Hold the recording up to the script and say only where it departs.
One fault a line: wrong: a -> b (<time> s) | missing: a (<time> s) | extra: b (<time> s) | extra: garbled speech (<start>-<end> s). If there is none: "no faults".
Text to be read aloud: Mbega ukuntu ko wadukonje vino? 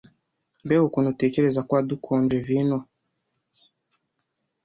extra: utekereza (1.1 s)